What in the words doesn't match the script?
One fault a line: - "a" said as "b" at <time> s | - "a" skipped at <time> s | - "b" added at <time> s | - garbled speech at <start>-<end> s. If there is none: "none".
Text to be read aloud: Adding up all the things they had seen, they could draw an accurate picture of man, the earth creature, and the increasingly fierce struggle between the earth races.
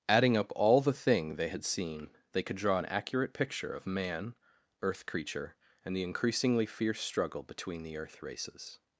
- "things" said as "thing" at 0.9 s
- "the" skipped at 4.3 s